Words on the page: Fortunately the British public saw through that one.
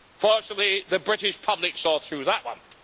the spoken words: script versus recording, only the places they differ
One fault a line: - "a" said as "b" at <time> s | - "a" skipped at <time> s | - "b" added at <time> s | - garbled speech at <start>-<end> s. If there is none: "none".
none